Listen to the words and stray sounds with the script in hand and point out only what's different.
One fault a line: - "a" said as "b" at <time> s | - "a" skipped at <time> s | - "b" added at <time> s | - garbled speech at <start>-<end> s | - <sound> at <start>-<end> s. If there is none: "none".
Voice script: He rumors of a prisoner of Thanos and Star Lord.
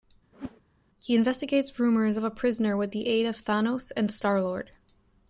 - whoosh at 0.3-0.6 s
- "investigates" added at 1.1 s
- "with the aid" added at 2.8 s